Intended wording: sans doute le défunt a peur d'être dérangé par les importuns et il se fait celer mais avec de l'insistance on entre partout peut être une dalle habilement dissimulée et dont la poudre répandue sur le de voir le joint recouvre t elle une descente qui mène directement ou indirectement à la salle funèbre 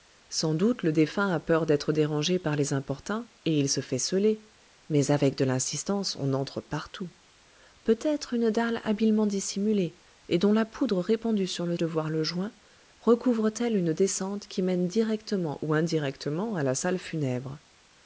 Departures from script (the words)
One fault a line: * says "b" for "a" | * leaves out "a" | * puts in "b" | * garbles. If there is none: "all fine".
all fine